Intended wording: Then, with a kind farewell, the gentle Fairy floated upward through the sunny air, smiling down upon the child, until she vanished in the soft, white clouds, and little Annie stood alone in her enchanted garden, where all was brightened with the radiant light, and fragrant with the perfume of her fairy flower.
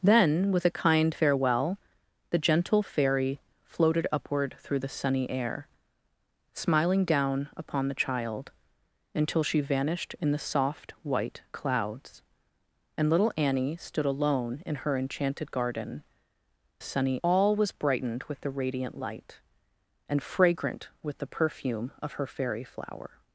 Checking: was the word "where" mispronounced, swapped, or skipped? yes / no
yes